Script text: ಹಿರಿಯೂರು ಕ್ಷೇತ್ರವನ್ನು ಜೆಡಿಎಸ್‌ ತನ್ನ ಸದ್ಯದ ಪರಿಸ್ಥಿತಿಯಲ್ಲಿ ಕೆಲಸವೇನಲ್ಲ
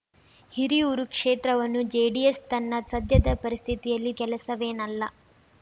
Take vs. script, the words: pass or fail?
pass